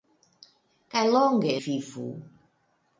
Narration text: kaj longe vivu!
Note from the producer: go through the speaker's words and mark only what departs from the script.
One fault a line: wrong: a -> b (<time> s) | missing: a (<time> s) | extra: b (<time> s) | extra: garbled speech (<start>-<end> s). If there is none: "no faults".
no faults